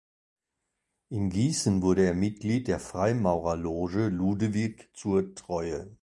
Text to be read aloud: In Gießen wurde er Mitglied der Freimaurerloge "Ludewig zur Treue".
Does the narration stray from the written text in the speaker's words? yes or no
no